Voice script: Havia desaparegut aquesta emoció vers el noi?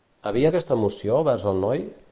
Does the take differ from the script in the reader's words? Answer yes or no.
yes